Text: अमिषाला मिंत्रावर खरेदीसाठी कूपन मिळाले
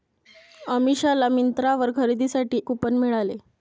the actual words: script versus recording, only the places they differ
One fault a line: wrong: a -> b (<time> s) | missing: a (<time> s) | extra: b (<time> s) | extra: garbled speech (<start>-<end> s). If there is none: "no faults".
no faults